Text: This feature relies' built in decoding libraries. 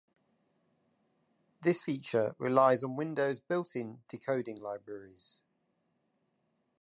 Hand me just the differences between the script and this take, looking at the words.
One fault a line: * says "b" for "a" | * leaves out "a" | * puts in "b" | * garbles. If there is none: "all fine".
* puts in "on Windows"